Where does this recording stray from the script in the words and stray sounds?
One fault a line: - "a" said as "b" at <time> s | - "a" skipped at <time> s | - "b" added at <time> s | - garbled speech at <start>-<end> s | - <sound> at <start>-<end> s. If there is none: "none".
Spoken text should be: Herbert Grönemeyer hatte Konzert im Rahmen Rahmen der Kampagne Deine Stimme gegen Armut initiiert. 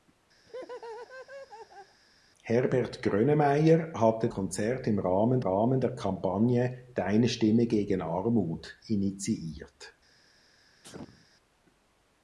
- laugh at 0.4-2.0 s
- sneeze at 10.8-11.3 s